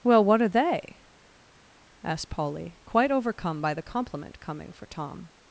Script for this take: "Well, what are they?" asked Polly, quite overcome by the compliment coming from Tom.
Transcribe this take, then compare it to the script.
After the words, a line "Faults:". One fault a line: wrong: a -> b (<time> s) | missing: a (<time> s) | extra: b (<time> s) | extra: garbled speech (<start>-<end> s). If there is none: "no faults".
"Well, what are they?" asked Polly, quite overcome by the compliment coming for Tom.
Faults:
wrong: from -> for (4.7 s)